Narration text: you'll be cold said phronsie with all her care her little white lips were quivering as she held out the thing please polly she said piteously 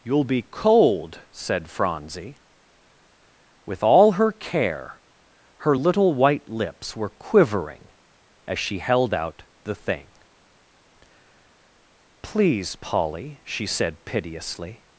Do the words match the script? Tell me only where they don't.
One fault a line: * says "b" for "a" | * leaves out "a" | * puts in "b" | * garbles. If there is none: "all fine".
all fine